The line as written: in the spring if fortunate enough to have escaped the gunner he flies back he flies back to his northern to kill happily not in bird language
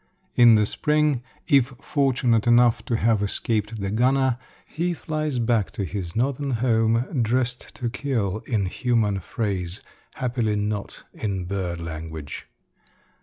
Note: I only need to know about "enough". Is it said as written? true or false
true